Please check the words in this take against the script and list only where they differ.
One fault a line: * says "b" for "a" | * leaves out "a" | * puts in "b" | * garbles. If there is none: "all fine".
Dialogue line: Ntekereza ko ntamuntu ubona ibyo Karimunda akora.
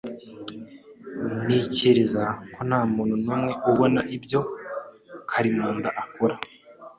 * puts in "numwe"